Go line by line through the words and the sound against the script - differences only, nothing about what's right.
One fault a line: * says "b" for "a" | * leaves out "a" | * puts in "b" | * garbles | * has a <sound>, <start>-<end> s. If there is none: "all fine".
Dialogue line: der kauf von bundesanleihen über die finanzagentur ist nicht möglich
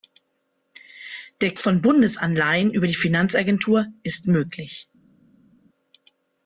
* leaves out "kauf"
* leaves out "nicht"